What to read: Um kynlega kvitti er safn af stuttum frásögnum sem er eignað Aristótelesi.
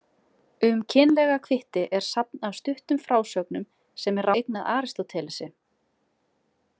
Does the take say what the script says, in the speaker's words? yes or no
yes